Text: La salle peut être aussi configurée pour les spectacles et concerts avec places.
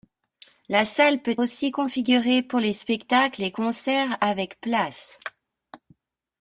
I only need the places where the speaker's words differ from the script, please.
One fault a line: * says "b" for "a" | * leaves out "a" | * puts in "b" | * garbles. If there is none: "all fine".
* leaves out "être"